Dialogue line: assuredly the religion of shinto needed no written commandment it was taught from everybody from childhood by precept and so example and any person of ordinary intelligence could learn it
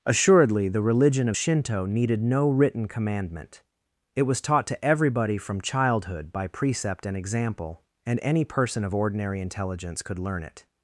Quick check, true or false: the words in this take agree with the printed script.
false